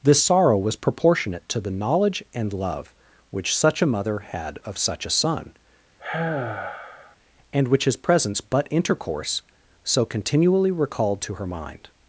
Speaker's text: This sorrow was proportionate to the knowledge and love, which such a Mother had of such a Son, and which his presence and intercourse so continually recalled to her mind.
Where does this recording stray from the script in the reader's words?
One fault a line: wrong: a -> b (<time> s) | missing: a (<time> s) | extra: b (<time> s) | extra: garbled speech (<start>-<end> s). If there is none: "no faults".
wrong: and -> but (8.4 s)